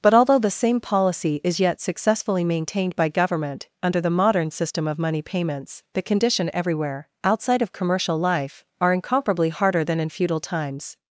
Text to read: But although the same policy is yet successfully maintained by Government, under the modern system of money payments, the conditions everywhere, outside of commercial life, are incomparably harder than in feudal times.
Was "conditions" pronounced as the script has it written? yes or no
no